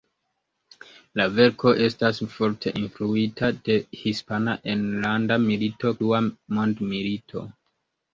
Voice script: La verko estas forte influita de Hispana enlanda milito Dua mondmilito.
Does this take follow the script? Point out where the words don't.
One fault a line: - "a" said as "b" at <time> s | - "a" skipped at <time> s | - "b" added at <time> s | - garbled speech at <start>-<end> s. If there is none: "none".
none